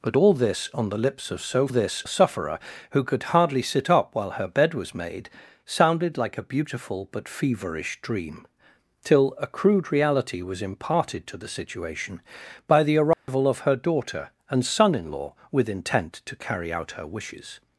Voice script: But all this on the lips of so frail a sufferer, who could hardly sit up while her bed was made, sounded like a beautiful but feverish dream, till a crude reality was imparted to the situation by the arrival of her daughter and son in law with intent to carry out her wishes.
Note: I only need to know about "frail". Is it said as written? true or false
false